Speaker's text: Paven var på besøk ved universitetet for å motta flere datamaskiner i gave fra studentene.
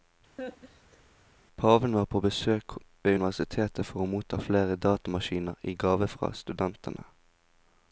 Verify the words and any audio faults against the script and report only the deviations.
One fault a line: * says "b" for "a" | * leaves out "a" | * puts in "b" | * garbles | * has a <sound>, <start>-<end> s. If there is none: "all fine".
* has a laugh, 0.4-1.0 s